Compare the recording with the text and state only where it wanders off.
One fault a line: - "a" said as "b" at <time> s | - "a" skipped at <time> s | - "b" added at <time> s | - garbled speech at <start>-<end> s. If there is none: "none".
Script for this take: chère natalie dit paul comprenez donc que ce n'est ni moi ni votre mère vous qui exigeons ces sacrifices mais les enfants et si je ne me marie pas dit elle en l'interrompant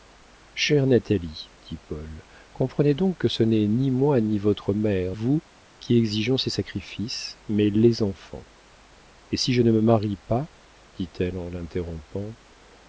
none